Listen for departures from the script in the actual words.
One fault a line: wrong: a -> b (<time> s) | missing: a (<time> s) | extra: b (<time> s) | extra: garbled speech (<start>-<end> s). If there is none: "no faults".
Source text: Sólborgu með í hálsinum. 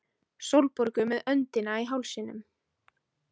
extra: öndina (1.4 s)